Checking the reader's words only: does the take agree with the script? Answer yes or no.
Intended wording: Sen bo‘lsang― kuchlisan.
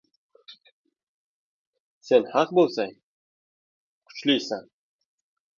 no